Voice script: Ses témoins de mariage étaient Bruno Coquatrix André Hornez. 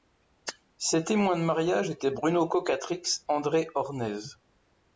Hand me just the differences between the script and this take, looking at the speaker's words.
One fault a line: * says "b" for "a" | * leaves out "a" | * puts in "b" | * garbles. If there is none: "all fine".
all fine